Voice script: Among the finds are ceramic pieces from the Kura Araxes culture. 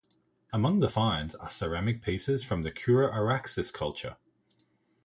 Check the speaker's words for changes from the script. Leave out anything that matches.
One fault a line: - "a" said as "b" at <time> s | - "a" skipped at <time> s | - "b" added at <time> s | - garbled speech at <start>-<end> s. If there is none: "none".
none